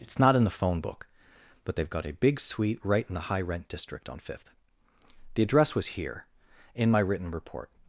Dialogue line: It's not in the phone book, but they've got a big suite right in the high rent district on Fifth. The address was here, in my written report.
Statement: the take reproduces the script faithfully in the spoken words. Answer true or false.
true